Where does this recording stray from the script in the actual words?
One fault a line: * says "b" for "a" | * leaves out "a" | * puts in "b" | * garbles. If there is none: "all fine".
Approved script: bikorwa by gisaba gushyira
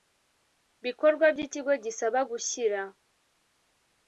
* puts in "ikigo"